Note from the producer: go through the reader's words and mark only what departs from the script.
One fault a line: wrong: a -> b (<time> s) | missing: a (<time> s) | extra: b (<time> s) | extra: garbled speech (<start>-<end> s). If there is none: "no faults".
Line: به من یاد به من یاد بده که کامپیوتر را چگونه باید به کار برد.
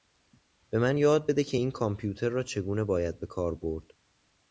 missing: به من یاد (1.3 s)
extra: این (1.5 s)